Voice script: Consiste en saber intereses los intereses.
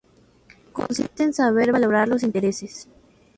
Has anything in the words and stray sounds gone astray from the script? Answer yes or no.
yes